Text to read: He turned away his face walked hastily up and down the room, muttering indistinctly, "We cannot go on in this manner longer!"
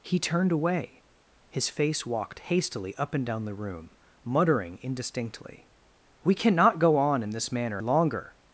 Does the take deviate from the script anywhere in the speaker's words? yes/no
no